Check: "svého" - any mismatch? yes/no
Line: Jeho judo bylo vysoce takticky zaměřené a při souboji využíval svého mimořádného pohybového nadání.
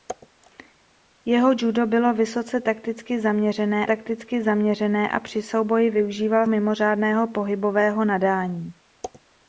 yes